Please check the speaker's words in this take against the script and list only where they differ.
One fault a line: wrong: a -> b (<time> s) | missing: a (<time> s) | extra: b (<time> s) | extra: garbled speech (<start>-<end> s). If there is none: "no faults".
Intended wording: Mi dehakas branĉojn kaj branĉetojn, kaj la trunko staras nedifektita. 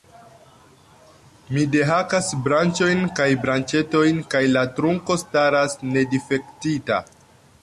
no faults